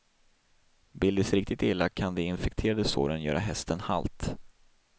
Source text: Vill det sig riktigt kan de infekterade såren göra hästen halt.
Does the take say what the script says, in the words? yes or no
no